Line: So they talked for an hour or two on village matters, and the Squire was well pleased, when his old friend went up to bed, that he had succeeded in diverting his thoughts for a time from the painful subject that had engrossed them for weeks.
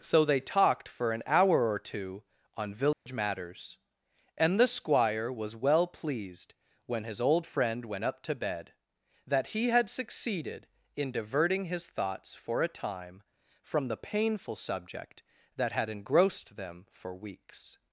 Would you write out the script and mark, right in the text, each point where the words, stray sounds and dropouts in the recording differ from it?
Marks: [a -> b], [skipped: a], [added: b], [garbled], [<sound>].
So they talked for an hour or two on village [dropout] matters, and the Squire was well pleased, when his old friend went up to bed, that he had succeeded in diverting his thoughts for a time from the painful subject that had engrossed them for weeks.